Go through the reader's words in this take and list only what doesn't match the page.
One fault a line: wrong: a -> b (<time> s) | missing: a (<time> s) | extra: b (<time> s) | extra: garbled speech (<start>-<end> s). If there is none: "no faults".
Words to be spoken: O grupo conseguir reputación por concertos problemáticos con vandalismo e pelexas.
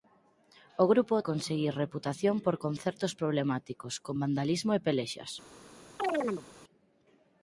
no faults